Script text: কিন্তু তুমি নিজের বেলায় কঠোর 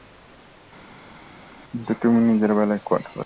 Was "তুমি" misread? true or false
false